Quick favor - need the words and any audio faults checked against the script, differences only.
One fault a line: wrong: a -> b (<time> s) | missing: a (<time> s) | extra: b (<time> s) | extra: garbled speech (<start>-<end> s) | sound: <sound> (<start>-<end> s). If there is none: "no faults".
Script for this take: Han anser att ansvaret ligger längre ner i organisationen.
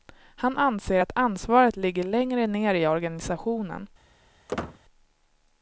sound: squeak (4.5-4.8 s)